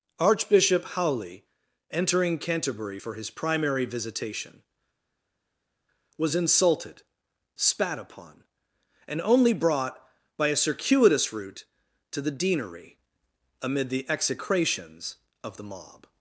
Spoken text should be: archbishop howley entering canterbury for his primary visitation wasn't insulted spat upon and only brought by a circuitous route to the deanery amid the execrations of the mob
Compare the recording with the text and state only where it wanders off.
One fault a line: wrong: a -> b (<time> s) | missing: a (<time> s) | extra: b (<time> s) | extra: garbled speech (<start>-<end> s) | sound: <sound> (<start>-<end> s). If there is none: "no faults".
wrong: wasn't -> was (6.2 s)